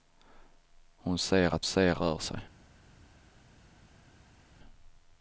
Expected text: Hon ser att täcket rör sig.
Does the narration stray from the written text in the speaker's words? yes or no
yes